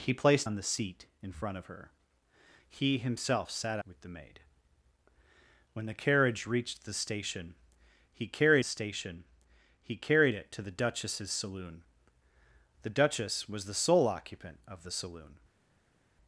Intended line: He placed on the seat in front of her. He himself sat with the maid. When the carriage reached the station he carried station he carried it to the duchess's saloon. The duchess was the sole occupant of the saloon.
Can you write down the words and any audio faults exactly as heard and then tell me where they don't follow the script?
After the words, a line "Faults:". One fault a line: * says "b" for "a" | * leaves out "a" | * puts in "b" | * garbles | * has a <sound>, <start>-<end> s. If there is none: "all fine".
He placed on the seat in front of her. He himself sat with the maid. When the carriage reached the station he carried station he carried it to the duchess's saloon. The duchess was the sole occupant of the saloon.
Faults:
all fine